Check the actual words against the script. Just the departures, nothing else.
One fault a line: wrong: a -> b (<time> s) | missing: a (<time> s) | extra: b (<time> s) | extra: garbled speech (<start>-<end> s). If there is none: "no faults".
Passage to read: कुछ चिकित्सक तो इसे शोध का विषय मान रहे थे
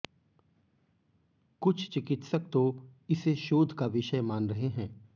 wrong: थे -> हैं (4.7 s)